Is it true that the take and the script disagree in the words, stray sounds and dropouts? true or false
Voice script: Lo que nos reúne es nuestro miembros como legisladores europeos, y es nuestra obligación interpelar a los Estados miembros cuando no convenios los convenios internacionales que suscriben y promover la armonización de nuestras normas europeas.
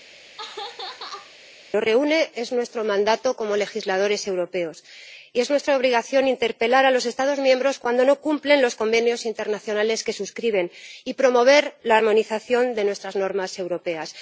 true